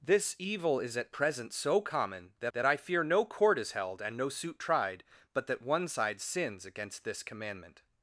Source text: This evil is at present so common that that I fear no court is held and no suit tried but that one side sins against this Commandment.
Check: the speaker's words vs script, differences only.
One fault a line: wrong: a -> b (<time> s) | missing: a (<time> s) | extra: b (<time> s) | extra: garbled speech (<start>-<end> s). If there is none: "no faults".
no faults